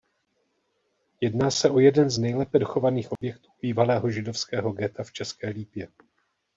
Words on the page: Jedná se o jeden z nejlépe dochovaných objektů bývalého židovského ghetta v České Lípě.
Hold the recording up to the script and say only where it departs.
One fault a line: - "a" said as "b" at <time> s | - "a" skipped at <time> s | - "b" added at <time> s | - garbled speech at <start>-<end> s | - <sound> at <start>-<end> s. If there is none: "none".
- dropout at 3.2-3.2 s